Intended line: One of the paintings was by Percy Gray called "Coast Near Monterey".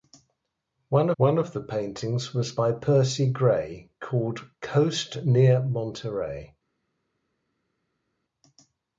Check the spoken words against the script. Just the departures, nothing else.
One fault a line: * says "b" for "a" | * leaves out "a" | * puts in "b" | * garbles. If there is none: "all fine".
* puts in "one"